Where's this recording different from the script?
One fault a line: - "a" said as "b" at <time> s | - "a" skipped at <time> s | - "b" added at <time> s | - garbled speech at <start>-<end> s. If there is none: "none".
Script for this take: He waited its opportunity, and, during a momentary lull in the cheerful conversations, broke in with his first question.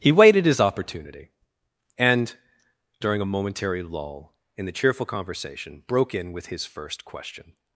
- "its" said as "his" at 0.5 s
- "conversations" said as "conversation" at 5.0 s